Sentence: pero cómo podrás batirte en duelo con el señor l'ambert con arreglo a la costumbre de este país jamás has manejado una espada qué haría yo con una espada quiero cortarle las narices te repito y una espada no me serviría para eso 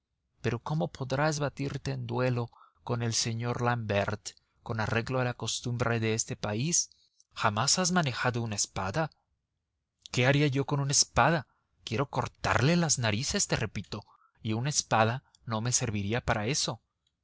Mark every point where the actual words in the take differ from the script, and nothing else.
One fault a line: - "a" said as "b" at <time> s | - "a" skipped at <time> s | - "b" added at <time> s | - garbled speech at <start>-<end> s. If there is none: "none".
none